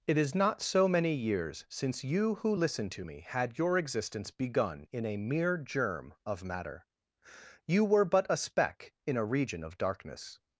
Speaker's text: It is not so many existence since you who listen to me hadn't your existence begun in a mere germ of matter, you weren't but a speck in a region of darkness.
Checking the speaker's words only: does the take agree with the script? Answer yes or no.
no